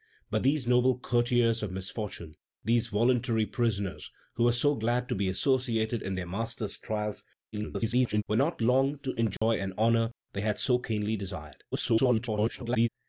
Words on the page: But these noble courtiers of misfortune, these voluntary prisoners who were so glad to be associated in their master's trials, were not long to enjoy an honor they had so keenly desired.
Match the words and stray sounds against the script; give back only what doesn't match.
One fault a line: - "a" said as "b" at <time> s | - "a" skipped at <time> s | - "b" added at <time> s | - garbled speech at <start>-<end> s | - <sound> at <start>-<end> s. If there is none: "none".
- garbled speech at 7.5-8.2 s
- dropout at 9.4-9.4 s
- garbled speech at 11.7-12.9 s